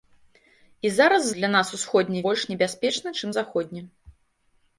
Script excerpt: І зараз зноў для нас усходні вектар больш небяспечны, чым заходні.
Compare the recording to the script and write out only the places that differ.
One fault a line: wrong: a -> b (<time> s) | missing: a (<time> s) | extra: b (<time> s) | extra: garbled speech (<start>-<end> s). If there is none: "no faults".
missing: зноў (1.3 s)
missing: вектар (2.2 s)